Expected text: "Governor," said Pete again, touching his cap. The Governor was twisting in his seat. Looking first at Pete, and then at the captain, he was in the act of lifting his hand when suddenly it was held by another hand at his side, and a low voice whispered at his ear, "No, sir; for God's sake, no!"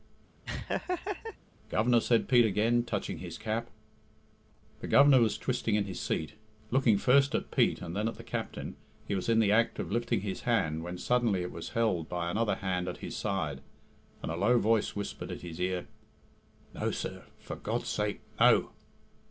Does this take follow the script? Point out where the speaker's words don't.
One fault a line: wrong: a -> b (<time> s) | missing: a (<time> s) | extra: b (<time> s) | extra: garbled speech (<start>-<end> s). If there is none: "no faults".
no faults